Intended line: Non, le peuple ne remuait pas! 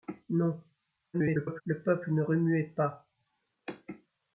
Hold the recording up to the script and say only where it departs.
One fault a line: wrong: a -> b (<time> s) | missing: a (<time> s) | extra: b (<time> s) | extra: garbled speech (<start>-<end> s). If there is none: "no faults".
extra: garbled speech (1.1-1.6 s)